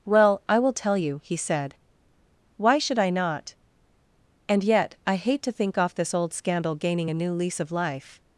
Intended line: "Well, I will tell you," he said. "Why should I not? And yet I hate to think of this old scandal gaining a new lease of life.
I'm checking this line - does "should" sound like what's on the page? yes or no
yes